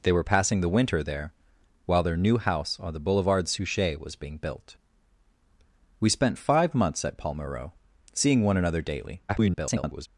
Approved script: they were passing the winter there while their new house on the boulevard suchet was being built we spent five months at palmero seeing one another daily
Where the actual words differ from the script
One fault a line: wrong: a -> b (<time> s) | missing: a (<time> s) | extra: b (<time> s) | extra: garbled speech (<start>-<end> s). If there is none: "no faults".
extra: garbled speech (9.3-10.1 s)